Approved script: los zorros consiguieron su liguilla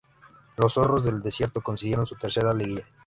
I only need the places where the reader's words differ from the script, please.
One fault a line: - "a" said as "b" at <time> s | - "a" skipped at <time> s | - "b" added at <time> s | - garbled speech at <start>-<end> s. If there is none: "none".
- "del desierto" added at 1.0 s
- "tercera" added at 2.1 s